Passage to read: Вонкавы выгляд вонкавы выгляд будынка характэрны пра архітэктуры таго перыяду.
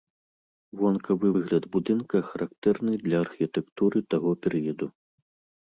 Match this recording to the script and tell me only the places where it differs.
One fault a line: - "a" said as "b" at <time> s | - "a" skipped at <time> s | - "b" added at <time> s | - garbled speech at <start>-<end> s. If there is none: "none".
- "вонкавы выгляд" skipped at 1.6 s
- "пра" said as "для" at 3.1 s